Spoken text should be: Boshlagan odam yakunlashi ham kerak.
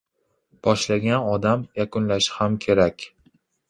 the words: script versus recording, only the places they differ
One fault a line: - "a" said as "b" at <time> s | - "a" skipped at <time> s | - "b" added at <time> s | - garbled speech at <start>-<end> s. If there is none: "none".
none